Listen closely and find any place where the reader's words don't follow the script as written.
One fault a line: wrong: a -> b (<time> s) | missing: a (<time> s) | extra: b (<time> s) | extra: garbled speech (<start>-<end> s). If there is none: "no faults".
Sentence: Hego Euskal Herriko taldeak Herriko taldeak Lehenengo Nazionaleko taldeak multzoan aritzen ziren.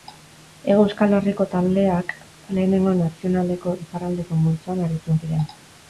missing: Herriko taldeak (2.1 s)
wrong: taldeak -> iparraldeko (3.9 s)